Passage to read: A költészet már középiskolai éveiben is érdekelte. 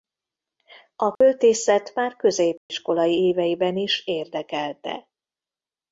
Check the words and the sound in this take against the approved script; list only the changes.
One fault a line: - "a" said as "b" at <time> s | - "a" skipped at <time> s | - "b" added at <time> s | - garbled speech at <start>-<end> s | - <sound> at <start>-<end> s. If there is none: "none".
- dropout at 1.2-1.2 s
- dropout at 2.6-2.7 s